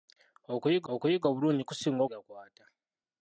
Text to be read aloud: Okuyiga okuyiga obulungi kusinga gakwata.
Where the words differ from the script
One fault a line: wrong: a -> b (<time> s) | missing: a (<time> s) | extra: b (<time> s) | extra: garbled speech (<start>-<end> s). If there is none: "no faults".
no faults